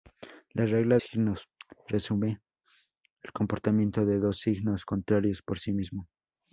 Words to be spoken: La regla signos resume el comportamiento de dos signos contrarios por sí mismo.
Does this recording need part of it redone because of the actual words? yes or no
no